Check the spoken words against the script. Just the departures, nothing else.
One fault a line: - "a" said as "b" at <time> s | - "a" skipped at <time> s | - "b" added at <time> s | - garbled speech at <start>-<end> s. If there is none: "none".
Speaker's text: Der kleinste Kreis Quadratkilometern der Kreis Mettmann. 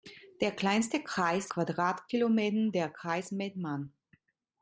none